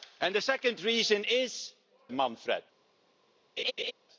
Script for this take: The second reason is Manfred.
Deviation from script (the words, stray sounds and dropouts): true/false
true